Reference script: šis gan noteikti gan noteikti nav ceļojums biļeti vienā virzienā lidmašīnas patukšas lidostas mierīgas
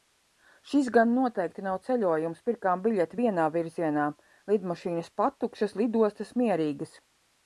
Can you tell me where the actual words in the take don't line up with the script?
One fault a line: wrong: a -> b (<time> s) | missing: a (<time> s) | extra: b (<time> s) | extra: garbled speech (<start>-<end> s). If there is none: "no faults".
missing: gan noteikti (1.6 s)
extra: pirkām (2.5 s)